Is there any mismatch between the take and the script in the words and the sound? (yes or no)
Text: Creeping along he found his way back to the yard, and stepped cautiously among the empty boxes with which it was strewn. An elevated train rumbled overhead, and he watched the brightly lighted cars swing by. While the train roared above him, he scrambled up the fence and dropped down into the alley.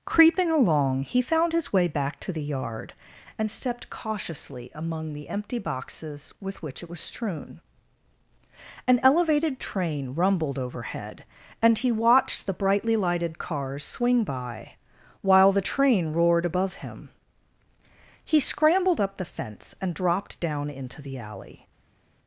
no